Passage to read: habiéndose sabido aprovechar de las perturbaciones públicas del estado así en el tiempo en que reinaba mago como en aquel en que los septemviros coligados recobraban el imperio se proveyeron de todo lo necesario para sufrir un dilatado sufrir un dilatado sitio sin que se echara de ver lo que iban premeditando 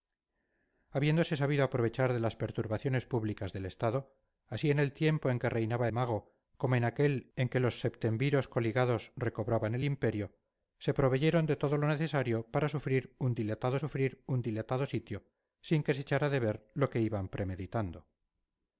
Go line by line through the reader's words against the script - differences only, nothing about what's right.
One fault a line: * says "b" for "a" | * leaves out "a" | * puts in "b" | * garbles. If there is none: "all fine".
all fine